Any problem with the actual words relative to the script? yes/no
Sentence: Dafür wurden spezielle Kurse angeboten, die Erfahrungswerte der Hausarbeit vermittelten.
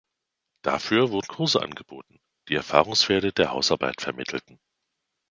yes